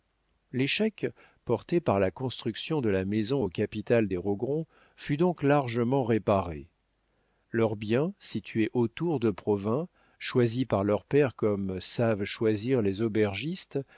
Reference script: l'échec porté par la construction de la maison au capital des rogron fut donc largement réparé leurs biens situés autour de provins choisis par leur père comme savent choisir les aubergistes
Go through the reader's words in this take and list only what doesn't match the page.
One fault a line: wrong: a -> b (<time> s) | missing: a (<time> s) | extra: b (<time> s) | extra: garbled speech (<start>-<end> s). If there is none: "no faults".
no faults